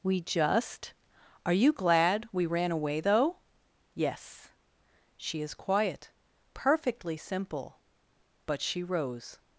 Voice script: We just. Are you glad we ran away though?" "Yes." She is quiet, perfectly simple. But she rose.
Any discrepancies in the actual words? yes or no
no